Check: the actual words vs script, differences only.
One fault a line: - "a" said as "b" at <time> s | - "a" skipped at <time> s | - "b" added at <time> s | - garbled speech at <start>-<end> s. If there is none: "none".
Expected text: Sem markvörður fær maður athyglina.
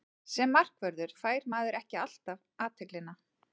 - "ekki alltaf" added at 1.8 s